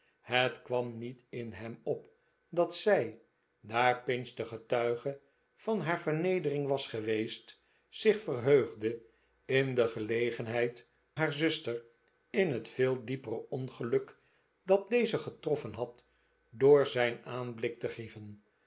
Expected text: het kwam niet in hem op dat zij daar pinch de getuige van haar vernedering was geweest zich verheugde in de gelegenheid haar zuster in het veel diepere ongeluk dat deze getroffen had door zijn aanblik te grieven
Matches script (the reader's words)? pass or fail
pass